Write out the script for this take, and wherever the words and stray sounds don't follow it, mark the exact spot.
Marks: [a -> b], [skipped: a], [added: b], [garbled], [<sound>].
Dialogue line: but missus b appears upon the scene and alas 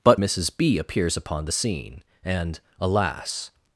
but missus b appears upon the scene and alas